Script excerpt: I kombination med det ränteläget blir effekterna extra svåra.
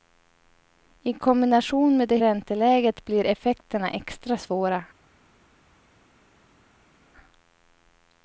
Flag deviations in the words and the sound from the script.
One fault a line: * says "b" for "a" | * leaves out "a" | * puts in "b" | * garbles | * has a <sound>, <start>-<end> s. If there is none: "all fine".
all fine